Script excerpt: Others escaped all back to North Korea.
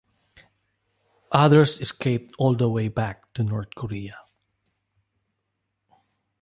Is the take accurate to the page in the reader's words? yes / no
no